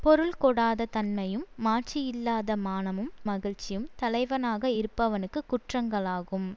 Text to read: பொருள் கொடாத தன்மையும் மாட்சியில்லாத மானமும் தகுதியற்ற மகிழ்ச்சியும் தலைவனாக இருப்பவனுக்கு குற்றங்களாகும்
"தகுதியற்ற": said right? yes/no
no